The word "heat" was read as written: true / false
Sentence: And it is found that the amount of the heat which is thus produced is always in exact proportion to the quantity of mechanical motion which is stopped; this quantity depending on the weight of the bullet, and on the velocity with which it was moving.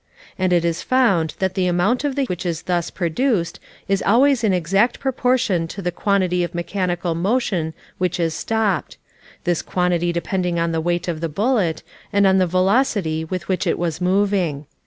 false